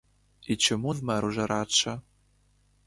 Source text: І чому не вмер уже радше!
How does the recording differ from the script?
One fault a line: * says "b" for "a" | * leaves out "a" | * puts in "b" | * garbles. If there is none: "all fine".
* leaves out "не"